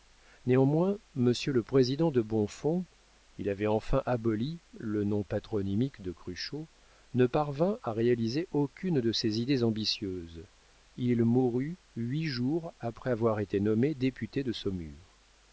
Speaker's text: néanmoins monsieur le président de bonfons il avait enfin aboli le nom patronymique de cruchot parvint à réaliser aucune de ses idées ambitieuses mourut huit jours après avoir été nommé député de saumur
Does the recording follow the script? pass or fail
fail